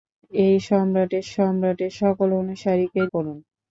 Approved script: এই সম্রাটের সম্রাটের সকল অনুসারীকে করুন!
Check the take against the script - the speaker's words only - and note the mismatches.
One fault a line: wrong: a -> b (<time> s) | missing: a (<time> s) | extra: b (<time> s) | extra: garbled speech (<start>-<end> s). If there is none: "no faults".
no faults